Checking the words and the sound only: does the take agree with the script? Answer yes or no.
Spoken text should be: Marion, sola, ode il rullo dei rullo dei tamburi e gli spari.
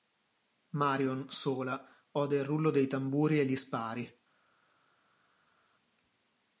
no